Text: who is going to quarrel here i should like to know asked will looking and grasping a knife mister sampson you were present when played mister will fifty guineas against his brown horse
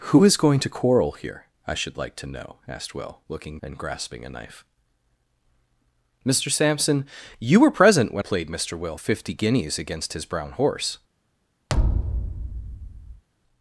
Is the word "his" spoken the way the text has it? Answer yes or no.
yes